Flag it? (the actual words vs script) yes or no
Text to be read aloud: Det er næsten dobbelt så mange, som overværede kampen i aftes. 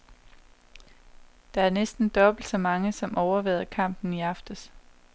no